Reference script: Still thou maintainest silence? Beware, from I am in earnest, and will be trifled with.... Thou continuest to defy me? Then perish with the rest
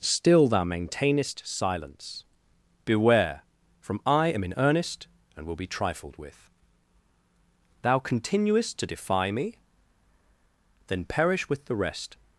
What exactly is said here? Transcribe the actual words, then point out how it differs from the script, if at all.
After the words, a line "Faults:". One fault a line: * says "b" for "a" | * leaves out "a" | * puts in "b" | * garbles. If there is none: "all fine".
Still thou maintainest silence? Beware, from I am in earnest, and will be trifled with.... Thou continuest to defy me? Then perish with the rest
Faults:
all fine